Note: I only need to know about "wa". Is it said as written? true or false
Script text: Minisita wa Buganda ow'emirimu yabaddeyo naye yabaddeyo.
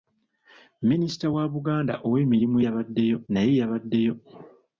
true